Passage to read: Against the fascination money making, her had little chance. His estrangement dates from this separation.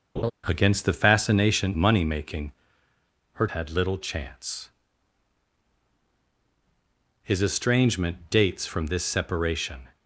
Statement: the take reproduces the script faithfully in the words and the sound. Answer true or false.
false